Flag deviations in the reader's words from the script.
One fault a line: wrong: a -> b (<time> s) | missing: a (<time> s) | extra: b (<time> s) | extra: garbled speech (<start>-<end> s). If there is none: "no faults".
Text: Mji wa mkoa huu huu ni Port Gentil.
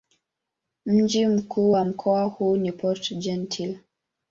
extra: mkuu (1.3 s)
missing: huu (2.6 s)